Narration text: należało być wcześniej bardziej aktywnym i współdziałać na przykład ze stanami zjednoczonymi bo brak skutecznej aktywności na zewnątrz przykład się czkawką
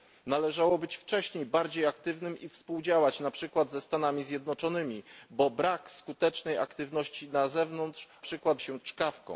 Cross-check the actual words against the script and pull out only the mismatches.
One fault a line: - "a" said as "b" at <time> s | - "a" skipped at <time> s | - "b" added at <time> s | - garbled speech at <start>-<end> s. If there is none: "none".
none